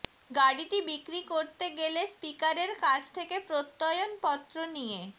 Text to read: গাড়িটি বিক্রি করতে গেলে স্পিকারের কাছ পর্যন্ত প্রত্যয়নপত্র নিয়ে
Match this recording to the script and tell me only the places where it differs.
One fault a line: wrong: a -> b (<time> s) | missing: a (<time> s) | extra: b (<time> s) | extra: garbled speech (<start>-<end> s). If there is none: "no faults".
wrong: পর্যন্ত -> থেকে (3.2 s)